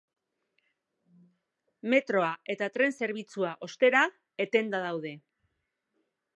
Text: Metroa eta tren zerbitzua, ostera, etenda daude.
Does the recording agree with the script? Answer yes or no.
yes